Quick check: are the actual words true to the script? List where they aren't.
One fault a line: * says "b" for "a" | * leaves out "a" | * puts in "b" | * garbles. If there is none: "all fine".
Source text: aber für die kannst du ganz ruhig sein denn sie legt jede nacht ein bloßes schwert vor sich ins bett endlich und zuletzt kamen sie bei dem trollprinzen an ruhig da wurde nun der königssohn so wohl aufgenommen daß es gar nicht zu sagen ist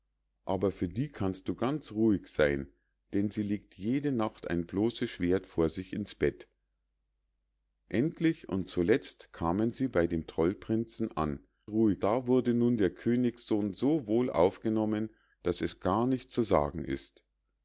all fine